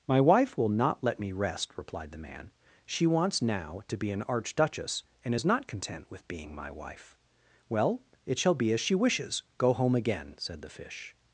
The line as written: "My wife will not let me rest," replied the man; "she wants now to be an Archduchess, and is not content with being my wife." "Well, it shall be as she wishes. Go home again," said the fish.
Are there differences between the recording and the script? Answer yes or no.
no